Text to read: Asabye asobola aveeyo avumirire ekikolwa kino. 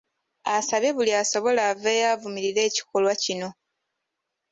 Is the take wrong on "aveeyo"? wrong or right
right